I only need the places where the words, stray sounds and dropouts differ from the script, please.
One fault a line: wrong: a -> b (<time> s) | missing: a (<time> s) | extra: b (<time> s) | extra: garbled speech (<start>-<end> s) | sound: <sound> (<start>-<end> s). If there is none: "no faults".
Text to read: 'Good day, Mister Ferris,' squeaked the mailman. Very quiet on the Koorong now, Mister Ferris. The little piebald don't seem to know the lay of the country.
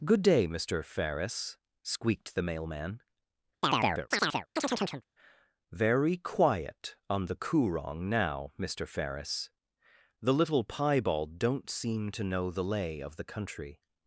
sound: chirp (3.6-5.0 s)